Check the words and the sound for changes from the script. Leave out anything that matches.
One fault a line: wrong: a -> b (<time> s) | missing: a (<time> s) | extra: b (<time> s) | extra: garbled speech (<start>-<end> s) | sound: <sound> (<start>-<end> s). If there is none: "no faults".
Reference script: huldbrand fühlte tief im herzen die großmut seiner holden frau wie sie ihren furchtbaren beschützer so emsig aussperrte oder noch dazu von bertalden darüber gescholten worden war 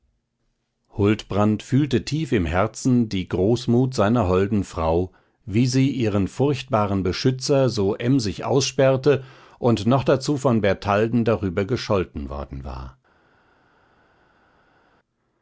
wrong: oder -> und (9.6 s)